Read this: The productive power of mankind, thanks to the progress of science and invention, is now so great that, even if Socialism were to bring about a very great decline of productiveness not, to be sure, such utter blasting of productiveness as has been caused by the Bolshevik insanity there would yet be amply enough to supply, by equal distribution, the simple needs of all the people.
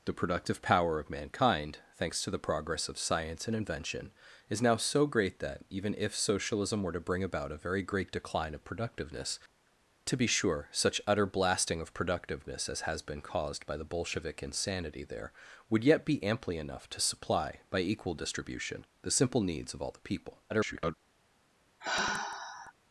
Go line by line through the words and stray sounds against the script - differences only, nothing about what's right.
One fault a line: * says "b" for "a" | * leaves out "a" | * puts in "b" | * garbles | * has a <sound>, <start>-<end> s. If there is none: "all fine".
* leaves out "not"
* garbles
* has a sigh, 21.8-22.7 s